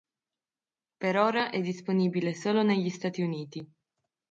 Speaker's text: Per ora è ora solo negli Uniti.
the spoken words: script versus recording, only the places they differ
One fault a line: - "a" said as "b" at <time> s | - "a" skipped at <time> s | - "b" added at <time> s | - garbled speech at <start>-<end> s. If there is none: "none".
- "ora" said as "disponibile" at 1.6 s
- "Stati" added at 2.9 s